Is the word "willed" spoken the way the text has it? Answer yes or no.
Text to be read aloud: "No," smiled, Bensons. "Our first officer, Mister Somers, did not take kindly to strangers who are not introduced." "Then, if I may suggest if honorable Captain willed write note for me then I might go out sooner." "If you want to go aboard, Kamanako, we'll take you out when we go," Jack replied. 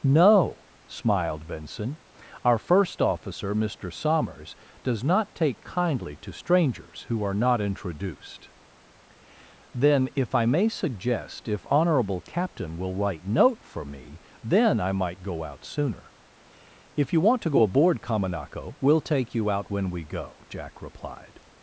no